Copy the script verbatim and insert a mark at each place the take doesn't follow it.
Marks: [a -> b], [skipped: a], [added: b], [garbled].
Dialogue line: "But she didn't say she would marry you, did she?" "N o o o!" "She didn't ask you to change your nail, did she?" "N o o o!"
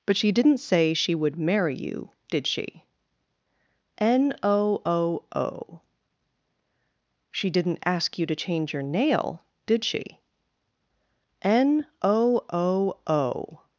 "But she didn't say she would marry you, did she?" "N o o o!" "She didn't ask you to change your nail, did she?" "N o o o!"